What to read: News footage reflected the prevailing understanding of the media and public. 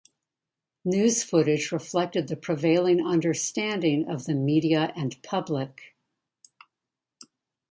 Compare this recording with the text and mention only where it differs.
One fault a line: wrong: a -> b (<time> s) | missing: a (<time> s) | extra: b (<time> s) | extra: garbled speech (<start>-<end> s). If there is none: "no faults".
no faults